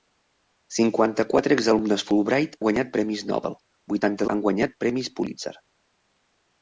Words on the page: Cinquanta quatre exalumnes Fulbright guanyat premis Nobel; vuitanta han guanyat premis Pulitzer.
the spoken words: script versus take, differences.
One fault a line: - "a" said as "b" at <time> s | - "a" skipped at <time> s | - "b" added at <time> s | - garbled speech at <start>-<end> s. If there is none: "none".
none